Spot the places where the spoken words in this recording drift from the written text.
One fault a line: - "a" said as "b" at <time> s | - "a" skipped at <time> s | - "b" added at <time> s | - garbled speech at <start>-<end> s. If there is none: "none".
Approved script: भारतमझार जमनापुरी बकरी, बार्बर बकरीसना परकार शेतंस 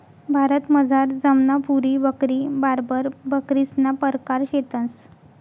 none